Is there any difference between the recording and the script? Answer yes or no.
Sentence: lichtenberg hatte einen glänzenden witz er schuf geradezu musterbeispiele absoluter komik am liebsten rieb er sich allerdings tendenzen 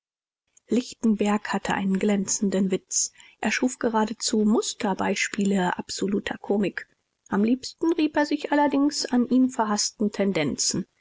yes